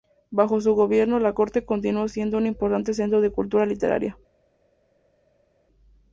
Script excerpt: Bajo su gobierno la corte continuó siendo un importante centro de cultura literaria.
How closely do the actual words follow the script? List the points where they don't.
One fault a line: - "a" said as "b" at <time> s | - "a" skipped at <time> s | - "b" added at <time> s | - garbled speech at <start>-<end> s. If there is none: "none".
none